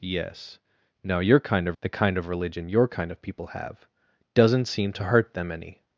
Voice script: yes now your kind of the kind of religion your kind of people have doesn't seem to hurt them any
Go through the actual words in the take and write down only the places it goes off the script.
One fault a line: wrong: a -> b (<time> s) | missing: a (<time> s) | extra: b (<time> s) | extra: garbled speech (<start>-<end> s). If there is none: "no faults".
no faults